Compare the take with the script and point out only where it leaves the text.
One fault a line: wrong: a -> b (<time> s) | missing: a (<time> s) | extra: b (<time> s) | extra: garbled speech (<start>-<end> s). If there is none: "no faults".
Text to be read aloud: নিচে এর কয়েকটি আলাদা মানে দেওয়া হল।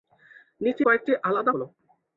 missing: এর (0.8 s)
missing: মানে দেওয়া (1.5 s)